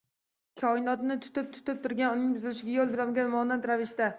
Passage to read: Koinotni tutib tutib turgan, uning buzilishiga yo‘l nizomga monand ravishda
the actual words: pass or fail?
pass